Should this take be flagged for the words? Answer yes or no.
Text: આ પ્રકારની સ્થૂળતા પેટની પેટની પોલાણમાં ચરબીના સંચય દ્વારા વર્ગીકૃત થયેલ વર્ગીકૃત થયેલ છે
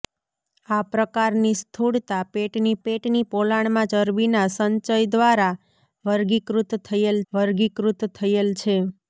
no